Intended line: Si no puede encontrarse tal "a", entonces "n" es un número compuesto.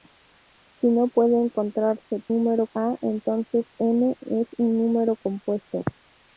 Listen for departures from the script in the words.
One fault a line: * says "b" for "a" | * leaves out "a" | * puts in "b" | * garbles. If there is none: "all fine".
* says "número" for "tal"